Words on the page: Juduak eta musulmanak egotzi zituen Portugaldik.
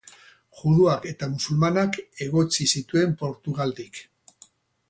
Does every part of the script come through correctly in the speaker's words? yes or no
yes